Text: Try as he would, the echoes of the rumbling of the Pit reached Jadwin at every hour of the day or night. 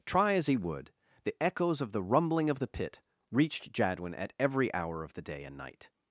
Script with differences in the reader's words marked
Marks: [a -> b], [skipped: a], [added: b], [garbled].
Try as he would, the echoes of the rumbling of the Pit reached Jadwin at every hour of the day [or -> and] night.